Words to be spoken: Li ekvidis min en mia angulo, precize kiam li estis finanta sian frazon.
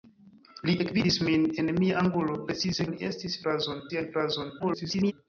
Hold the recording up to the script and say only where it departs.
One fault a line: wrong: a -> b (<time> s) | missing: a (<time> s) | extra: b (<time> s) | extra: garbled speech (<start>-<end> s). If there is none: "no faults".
missing: kiam (2.8 s)
wrong: finanta -> frazon (3.5 s)
extra: garbled speech (4.6-5.1 s)